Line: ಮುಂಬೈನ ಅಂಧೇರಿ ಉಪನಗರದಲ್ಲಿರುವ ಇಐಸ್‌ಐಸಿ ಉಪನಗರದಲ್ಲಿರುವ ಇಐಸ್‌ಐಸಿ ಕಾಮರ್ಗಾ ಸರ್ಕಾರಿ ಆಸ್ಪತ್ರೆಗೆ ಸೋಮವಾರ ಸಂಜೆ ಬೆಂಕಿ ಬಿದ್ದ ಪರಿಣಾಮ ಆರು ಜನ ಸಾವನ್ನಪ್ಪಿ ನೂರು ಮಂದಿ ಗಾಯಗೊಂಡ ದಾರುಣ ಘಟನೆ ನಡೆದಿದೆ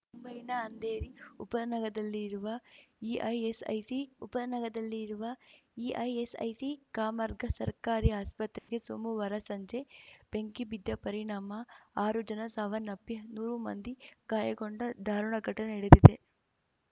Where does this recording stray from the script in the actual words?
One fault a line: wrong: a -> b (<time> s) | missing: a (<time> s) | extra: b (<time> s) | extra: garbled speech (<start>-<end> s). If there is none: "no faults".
no faults